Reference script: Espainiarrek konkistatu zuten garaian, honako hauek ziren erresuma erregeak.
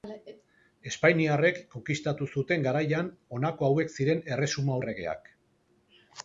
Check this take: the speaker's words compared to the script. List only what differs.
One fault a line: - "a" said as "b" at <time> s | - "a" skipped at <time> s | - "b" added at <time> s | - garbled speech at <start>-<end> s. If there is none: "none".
none